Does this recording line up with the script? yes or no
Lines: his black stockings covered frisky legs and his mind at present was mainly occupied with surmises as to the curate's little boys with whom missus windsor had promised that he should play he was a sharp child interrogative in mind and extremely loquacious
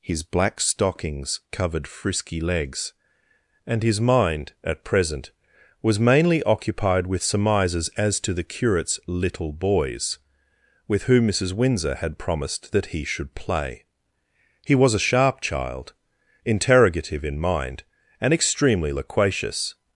yes